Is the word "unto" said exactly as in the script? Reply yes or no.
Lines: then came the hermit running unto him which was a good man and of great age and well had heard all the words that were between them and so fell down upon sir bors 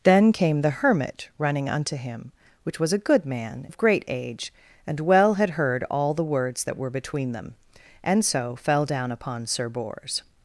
yes